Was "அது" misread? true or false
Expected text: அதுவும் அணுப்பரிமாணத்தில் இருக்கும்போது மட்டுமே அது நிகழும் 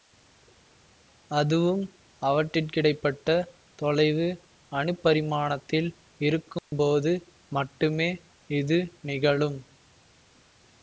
true